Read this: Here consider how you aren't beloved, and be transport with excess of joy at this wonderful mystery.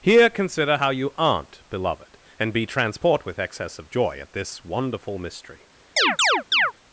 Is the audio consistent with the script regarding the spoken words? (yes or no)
yes